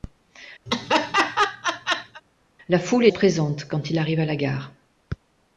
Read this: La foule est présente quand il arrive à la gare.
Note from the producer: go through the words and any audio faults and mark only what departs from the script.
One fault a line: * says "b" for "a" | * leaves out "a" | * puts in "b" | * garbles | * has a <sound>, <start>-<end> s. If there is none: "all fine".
* has a laugh, 0.7-2.2 s